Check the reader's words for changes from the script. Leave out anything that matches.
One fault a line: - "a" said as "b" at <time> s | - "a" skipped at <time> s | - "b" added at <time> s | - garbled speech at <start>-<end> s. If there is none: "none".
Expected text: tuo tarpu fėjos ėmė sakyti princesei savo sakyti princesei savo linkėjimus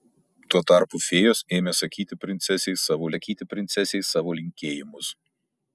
none